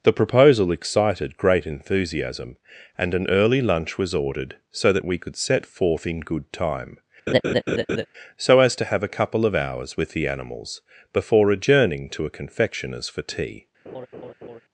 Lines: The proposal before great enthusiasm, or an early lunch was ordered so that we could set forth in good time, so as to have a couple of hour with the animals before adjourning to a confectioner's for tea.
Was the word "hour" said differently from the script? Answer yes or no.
yes